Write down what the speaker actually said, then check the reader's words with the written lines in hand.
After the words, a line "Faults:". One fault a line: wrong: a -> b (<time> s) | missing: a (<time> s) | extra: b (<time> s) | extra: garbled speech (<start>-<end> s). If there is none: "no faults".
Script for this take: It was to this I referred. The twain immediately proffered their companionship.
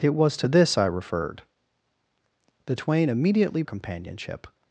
It was to this I referred. The twain immediately companionship.
Faults:
missing: proffered their (3.6 s)